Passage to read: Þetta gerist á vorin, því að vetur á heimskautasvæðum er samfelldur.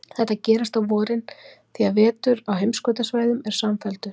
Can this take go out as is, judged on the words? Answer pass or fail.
pass